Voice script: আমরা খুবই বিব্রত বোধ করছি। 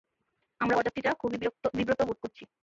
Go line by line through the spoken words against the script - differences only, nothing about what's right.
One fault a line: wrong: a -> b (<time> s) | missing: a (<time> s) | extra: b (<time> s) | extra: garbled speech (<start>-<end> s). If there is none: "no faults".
extra: বরযাত্রীরা (0.7 s)